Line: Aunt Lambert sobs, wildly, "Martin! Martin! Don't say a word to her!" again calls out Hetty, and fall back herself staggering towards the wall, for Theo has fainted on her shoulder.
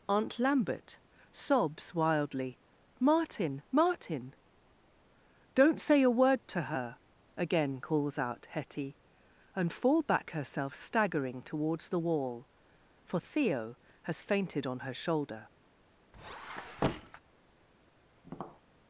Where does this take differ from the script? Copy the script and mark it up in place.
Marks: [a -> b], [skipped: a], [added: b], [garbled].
Aunt Lambert sobs, wildly, "Martin! Martin! Don't say a word to her!" again calls out Hetty, and fall back herself staggering towards the wall, for Theo has fainted on her shoulder.